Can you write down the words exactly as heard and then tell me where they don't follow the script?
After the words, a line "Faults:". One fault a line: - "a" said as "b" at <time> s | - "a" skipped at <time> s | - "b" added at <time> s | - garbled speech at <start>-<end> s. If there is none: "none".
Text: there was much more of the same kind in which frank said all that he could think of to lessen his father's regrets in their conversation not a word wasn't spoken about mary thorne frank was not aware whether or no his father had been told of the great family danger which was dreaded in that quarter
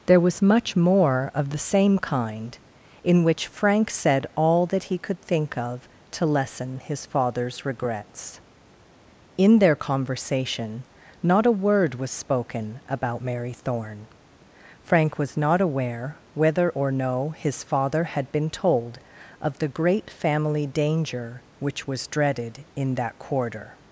there was much more of the same kind in which frank said all that he could think of to lessen his father's regrets in their conversation not a word was spoken about mary thorne frank was not aware whether or no his father had been told of the great family danger which was dreaded in that quarter
Faults:
- "wasn't" said as "was" at 11.9 s